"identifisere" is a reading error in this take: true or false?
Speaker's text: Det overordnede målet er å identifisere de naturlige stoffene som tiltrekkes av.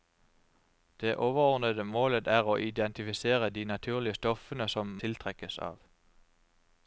false